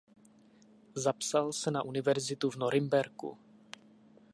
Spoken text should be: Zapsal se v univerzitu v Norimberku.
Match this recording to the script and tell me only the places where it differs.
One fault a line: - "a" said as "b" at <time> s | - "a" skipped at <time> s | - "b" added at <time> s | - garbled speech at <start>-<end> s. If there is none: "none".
- "v" said as "na" at 1.7 s